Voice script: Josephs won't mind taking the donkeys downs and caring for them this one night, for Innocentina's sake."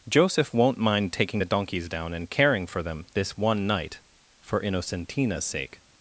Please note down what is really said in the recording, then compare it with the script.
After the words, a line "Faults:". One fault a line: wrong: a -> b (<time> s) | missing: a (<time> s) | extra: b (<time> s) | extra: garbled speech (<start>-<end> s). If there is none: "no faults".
Joseph won't mind taking the donkeys down and caring for them this one night, for Innocentina's sake."
Faults:
wrong: Josephs -> Joseph (0.1 s)
wrong: downs -> down (1.9 s)